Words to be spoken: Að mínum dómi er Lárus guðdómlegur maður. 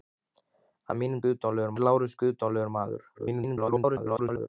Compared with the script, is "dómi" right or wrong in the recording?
wrong